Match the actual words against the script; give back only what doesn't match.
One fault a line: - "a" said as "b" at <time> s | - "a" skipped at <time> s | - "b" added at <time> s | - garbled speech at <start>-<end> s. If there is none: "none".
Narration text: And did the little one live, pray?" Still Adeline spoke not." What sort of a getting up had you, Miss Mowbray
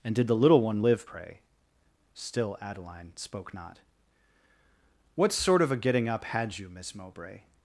none